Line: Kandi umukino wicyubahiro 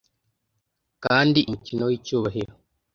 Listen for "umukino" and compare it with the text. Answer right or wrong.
right